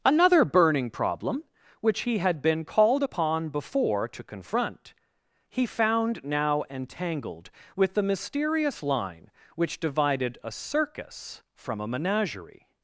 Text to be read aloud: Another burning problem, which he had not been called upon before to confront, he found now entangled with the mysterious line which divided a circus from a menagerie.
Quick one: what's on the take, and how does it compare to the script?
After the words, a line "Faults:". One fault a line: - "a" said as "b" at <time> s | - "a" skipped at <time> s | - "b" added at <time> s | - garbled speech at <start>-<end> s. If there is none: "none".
Another burning problem, which he had been called upon before to confront, he found now entangled with the mysterious line which divided a circus from a menagerie.
Faults:
- "not" skipped at 2.4 s